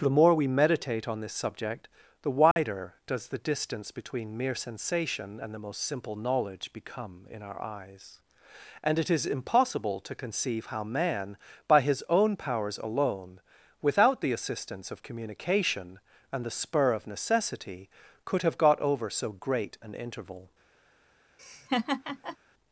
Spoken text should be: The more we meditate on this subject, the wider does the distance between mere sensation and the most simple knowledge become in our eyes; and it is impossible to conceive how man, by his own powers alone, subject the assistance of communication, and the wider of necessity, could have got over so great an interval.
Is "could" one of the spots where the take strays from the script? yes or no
no